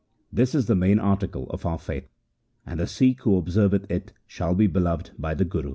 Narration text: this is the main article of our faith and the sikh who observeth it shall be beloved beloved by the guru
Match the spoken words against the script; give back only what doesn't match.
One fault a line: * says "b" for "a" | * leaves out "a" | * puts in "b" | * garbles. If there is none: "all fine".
* leaves out "beloved"